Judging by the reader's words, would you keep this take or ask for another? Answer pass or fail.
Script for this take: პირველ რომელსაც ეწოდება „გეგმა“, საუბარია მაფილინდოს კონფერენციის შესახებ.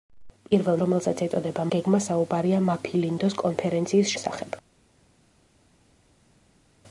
pass